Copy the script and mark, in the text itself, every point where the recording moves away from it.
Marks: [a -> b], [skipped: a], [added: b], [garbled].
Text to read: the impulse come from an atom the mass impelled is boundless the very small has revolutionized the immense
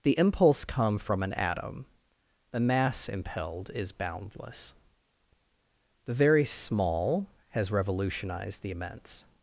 the impulse come from an atom the mass impelled is boundless the very small has revolutionized the immense